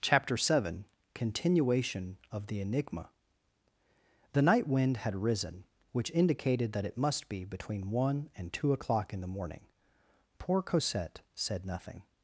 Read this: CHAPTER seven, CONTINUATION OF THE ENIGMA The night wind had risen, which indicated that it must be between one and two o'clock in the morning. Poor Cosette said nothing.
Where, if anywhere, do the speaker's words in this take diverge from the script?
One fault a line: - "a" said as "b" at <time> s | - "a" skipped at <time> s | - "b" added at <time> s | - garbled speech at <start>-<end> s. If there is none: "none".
none